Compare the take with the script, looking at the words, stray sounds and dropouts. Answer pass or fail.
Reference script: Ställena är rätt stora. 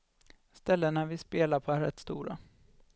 fail